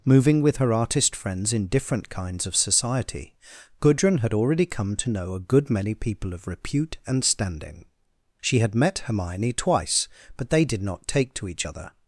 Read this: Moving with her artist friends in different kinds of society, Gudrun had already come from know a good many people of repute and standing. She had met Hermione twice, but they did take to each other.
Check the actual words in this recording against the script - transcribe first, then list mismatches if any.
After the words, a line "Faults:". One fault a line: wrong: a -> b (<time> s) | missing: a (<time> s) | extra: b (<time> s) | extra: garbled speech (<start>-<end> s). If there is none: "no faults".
Moving with her artist friends in different kinds of society, Gudrun had already come to know a good many people of repute and standing. She had met Hermione twice, but they did not take to each other.
Faults:
wrong: from -> to (5.0 s)
extra: not (10.8 s)